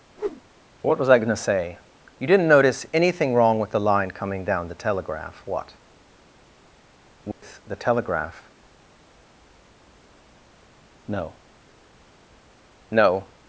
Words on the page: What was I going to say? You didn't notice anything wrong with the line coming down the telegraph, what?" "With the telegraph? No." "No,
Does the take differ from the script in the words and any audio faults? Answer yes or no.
yes